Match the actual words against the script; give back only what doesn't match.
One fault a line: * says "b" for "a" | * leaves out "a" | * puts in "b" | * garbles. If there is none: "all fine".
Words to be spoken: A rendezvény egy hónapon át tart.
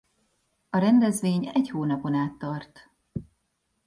all fine